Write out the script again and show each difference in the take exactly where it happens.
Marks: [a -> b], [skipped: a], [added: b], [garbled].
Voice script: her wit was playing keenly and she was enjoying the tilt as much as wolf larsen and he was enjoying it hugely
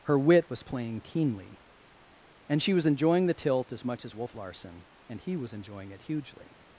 her wit was playing keenly and she was enjoying the tilt as much as wolf larsen and he was enjoying it hugely